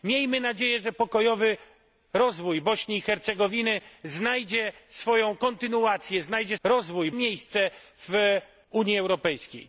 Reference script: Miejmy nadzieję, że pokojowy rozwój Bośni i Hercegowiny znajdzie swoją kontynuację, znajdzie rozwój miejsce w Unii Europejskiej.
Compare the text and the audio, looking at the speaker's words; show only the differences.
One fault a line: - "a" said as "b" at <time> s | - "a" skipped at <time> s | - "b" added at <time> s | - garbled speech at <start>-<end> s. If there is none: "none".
none